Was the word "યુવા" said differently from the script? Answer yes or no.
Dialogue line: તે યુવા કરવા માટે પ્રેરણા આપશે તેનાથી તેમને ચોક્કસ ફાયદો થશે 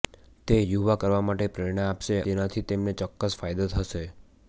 no